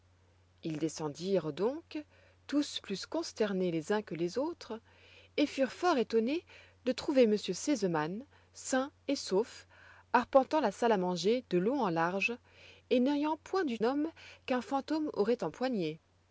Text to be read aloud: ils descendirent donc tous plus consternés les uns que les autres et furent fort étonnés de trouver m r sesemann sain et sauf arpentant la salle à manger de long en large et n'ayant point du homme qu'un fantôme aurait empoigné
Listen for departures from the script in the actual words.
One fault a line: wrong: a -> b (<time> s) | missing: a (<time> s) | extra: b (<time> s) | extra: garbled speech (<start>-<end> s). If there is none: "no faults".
no faults